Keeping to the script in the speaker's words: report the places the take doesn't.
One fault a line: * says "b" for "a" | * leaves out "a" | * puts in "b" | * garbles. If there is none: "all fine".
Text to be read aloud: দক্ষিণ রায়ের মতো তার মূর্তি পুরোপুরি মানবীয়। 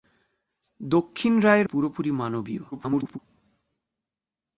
* leaves out "মতো তার মূর্তি"
* garbles